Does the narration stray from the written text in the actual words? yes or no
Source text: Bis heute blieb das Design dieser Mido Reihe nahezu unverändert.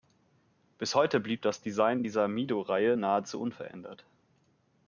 no